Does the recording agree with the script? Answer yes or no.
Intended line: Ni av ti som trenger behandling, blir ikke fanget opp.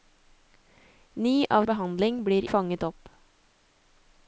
no